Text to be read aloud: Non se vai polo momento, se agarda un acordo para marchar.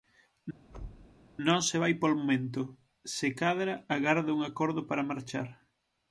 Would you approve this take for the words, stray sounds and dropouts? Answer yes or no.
no